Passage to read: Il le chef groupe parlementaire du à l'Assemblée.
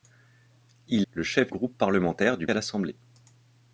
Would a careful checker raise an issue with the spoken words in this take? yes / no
no